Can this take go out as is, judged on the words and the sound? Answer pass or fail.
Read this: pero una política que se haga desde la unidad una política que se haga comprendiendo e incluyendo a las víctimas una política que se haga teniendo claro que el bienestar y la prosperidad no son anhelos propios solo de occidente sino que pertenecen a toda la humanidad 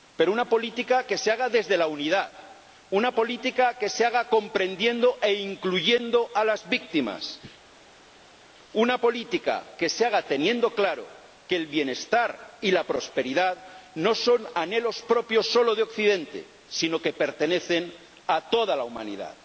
pass